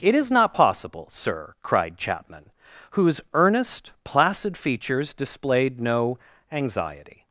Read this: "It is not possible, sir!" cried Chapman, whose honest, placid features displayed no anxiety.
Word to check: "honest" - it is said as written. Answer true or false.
false